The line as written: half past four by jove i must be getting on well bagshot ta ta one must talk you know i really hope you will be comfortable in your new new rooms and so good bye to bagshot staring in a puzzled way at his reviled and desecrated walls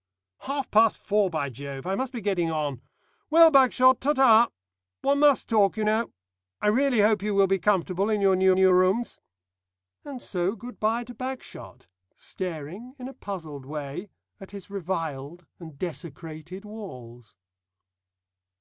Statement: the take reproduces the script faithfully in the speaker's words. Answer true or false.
true